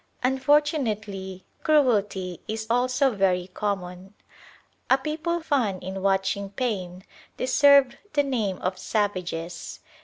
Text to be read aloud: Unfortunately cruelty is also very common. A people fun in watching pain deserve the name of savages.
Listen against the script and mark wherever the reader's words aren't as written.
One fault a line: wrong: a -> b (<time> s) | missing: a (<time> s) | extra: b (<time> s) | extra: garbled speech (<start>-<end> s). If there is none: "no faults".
no faults